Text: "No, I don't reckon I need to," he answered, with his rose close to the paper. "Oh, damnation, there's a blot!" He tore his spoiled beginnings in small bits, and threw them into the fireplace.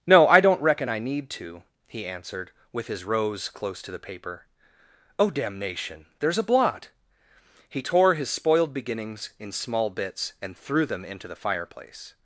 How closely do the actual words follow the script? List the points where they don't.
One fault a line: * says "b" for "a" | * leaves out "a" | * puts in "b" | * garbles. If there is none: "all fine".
all fine